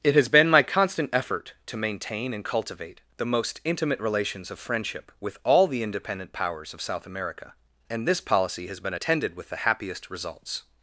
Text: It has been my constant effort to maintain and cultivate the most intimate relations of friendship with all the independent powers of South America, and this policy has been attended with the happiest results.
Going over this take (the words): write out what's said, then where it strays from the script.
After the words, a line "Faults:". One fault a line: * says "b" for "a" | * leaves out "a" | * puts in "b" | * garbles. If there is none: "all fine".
It has been my constant effort to maintain and cultivate the most intimate relations of friendship with all the independent powers of South America, and this policy has been attended with the happiest results.
Faults:
all fine